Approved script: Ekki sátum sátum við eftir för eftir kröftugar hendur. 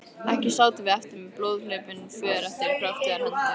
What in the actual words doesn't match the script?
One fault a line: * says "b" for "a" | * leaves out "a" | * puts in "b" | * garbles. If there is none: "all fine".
* leaves out "sátum"
* puts in "með blóðhlaupin"